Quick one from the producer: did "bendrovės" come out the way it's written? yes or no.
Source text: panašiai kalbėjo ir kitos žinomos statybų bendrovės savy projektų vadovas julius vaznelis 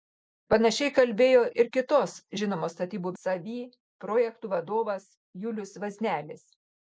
no